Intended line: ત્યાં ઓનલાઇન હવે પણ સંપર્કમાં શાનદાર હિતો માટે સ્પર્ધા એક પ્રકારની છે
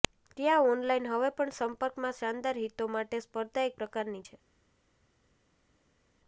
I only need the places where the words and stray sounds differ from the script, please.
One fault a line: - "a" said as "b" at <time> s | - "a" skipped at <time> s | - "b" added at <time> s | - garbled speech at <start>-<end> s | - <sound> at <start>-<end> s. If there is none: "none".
none